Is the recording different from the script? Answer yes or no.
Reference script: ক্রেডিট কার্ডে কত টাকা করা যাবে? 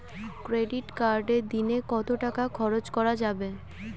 yes